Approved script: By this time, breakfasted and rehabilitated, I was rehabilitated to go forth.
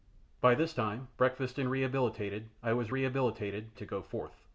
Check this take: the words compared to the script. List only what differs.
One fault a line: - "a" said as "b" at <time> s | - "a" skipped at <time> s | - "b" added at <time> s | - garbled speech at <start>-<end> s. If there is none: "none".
none